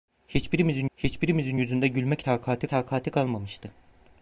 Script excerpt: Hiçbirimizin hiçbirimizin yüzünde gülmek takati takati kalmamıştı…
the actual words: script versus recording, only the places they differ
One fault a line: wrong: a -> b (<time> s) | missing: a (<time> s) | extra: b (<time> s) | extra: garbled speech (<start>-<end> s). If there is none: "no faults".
no faults